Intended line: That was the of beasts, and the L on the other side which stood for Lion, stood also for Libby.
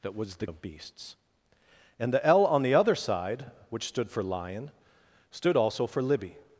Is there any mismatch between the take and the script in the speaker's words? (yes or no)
no